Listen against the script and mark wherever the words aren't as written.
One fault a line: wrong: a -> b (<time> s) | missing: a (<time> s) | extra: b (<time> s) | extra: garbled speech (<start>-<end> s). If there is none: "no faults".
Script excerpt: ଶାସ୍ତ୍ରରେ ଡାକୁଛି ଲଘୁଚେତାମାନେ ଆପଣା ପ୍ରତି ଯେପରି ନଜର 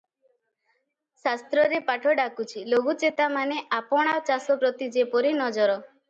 extra: ପାଠ (1.9 s)
extra: ଚାଷ (4.3 s)